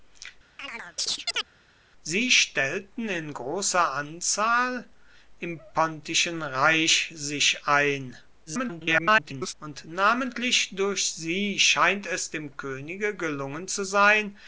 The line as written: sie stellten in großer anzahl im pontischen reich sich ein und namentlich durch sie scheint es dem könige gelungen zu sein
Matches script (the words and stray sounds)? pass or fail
fail